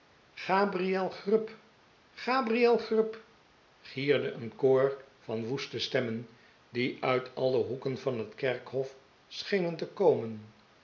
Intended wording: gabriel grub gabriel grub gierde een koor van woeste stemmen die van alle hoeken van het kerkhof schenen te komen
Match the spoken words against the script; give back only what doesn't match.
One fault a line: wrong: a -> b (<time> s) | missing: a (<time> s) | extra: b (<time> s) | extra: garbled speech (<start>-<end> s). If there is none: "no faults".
wrong: van -> uit (7.0 s)